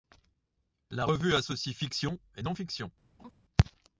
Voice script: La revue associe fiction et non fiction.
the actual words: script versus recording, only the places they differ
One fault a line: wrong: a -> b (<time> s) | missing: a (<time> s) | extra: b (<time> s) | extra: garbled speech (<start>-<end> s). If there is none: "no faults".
no faults